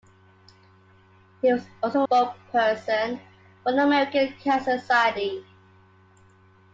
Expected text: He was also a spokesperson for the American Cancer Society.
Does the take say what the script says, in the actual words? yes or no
no